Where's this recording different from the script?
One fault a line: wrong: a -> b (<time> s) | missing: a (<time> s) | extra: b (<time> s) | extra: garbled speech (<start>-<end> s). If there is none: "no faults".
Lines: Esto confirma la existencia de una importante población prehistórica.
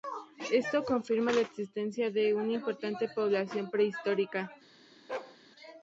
no faults